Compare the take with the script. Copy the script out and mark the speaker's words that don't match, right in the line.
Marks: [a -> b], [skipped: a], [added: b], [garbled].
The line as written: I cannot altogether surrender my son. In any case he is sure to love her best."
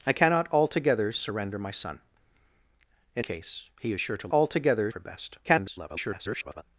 I cannot altogether surrender my son. In [skipped: any] case he is sure to [love -> altogether] her best." [garbled]